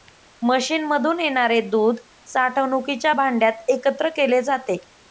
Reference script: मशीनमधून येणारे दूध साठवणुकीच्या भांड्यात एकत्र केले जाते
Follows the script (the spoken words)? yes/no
yes